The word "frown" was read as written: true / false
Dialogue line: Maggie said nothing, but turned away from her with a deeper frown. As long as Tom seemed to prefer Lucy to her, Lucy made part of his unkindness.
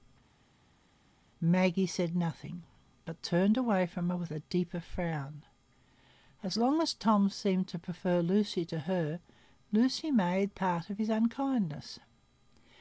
true